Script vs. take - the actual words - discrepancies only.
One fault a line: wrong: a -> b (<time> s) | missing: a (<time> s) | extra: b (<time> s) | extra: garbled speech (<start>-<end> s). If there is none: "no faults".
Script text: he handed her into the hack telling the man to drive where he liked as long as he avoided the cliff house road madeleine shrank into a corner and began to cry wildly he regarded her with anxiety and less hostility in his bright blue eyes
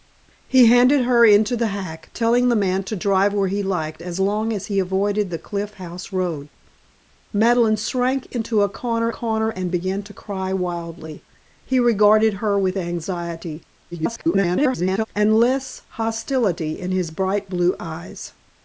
extra: corner (9.1 s)
extra: garbled speech (13.9-15.1 s)